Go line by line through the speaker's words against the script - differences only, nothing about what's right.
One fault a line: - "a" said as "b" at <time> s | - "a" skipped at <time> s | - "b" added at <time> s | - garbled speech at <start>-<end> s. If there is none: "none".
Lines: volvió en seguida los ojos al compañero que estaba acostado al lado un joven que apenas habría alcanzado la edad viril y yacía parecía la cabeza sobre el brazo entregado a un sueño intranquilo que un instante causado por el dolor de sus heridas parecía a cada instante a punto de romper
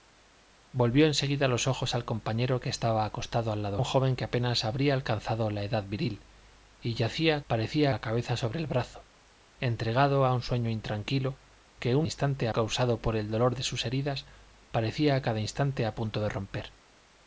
none